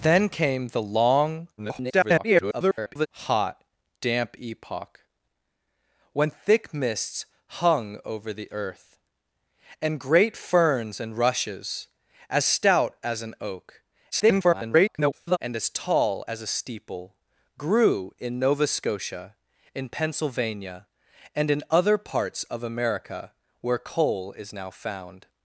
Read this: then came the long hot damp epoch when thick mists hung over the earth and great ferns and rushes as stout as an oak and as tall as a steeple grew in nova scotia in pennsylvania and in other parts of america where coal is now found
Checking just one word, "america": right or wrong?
right